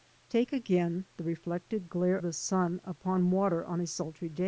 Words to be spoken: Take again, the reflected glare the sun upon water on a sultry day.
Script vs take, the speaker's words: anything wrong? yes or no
no